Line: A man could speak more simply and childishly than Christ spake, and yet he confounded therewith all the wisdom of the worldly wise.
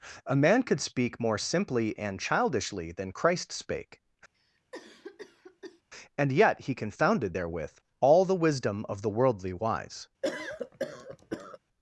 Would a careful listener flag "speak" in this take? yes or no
no